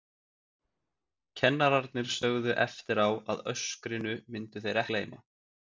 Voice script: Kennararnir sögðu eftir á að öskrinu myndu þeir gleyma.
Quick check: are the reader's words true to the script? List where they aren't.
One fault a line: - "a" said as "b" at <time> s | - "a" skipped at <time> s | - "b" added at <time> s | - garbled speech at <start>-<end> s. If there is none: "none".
none